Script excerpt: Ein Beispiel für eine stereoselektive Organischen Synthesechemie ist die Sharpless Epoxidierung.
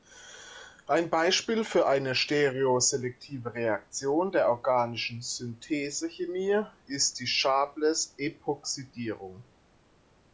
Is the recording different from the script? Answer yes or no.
yes